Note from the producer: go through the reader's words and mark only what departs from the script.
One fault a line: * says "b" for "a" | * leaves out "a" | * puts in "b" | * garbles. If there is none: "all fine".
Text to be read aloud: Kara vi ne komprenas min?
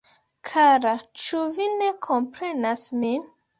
* puts in "ĉu"